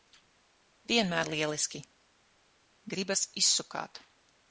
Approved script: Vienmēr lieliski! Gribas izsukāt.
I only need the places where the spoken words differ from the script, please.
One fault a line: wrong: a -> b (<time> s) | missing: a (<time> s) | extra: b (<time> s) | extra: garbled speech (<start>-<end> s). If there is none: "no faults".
no faults